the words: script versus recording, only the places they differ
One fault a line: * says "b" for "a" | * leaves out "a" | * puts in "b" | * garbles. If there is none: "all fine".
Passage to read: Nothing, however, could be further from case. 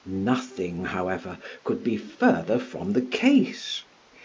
* puts in "the"